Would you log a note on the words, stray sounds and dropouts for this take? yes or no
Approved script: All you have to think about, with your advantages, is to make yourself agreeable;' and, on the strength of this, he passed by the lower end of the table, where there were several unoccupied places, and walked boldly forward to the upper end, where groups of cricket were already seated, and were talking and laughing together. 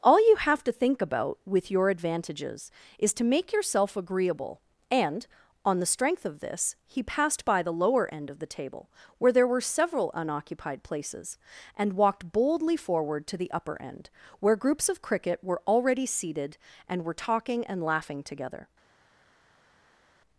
no